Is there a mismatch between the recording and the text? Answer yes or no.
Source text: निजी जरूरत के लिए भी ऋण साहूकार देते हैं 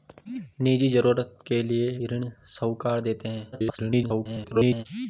yes